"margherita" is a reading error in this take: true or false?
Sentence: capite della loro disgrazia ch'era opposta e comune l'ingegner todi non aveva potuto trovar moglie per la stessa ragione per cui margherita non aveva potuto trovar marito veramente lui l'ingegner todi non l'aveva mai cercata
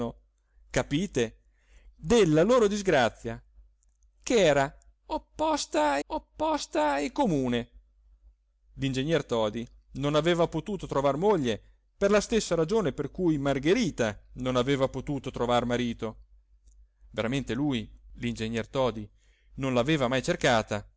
false